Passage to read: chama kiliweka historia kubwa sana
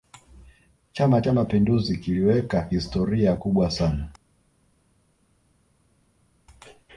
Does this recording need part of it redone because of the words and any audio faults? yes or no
yes